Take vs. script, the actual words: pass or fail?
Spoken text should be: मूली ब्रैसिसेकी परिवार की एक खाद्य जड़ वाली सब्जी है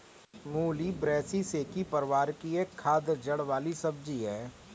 pass